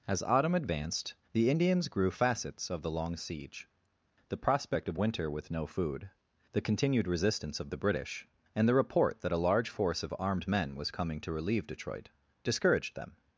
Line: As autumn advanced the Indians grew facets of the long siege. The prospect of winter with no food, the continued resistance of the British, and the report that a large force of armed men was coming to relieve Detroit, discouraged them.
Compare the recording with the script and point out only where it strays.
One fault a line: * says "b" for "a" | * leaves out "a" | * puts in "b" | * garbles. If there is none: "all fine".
all fine